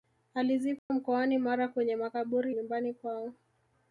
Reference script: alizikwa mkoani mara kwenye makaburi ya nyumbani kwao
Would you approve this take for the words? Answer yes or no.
no